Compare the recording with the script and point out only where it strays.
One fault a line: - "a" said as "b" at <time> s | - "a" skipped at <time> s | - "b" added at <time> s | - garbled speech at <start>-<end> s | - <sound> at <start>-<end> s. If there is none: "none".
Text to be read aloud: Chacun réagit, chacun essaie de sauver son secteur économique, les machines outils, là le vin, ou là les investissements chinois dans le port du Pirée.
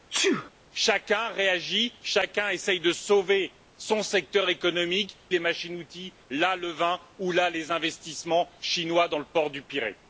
- sneeze at 0.1-0.5 s